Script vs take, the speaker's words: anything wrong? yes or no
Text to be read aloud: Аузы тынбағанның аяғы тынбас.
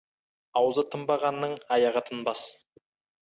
no